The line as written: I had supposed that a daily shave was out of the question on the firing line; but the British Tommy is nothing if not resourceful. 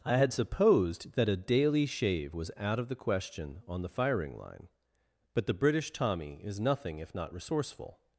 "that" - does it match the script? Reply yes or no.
yes